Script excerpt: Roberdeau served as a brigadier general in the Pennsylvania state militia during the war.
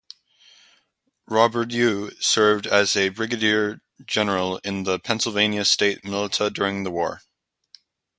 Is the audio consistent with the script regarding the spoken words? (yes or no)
yes